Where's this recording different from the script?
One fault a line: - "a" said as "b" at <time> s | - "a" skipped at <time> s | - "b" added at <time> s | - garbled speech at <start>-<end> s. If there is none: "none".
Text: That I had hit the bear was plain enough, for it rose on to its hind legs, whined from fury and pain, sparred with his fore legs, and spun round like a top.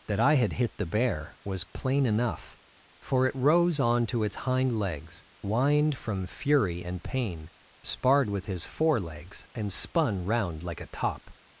none